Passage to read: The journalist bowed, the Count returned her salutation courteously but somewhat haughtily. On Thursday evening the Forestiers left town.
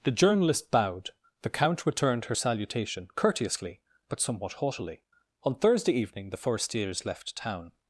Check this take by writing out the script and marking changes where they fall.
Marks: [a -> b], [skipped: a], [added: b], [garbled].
The journalist bowed, the Count returned her salutation courteously but somewhat haughtily. On Thursday evening the Forestiers left town.